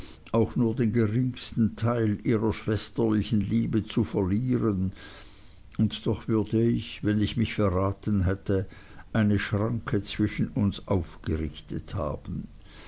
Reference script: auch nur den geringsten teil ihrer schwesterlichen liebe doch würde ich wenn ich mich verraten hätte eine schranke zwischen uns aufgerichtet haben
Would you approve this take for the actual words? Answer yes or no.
no